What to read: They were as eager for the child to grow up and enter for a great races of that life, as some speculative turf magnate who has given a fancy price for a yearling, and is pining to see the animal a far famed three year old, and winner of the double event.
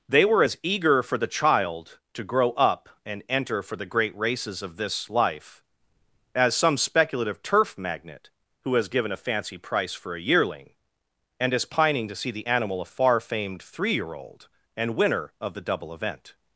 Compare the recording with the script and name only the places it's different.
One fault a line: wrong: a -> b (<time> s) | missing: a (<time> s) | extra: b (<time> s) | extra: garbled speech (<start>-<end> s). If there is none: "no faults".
wrong: a -> the (3.8 s)
wrong: that -> this (4.8 s)